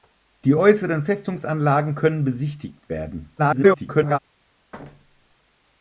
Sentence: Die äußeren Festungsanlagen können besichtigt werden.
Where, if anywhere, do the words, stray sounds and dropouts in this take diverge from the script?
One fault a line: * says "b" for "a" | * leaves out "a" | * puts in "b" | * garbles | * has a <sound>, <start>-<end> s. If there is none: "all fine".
* garbles
* has a thud, 4.7-5.4 s